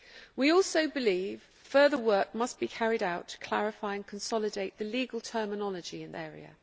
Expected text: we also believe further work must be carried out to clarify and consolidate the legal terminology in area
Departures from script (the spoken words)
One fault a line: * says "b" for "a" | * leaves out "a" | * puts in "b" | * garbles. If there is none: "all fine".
all fine